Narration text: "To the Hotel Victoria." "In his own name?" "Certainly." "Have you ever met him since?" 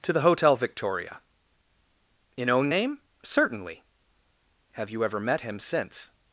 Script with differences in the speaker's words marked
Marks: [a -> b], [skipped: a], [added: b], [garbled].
"To the Hotel Victoria." "In [skipped: his] own name?" "Certainly." "Have you ever met him since?"